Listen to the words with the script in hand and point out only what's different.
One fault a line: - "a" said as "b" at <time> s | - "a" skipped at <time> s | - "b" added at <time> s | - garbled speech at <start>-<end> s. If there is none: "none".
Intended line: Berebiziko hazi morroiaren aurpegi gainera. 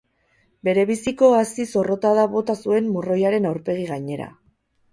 - "zorrotada bota zuen" added at 1.8 s